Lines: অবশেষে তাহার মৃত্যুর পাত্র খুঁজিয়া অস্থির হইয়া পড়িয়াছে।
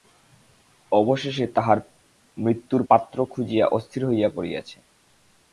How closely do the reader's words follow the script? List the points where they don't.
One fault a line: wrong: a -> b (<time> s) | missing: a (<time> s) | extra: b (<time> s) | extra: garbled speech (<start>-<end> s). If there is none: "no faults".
no faults